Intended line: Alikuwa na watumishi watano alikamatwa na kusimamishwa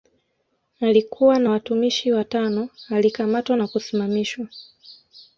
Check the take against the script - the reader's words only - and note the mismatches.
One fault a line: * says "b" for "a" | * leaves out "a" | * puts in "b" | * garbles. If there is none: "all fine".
all fine